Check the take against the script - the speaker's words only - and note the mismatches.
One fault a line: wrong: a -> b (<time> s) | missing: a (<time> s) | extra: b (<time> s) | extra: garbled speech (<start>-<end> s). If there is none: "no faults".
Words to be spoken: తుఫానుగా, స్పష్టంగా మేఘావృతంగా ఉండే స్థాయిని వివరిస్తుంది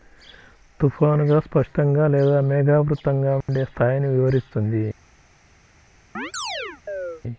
extra: లేదా (2.1 s)